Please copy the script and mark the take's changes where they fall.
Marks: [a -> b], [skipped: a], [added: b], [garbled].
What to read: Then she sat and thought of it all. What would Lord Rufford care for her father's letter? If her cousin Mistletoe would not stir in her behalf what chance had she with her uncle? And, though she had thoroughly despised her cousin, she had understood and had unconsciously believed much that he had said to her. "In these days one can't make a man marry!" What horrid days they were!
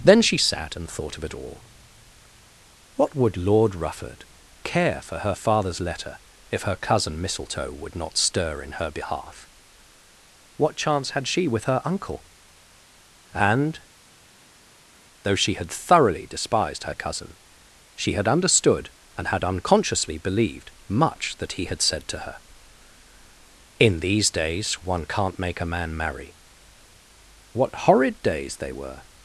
Then she sat and thought of it all. What would Lord Rufford care for her father's letter? If her cousin Mistletoe would not stir in her behalf what chance had she with her uncle? And, though she had thoroughly despised her cousin, she had understood and had unconsciously believed much that he had said to her. "In these days one can't make a man marry!" What horrid days they were!